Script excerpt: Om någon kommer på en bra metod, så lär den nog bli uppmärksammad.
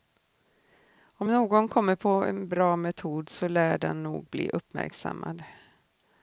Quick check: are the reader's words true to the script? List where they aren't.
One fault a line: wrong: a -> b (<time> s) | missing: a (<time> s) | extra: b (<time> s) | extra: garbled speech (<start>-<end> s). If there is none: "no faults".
no faults